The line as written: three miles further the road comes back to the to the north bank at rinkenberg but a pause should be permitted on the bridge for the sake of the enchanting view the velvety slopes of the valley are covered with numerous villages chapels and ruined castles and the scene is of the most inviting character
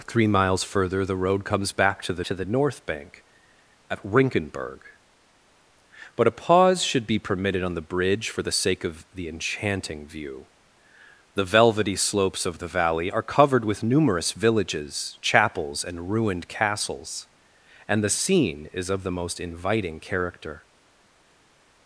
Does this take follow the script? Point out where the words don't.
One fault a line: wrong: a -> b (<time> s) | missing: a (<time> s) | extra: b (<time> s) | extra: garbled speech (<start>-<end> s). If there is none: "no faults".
no faults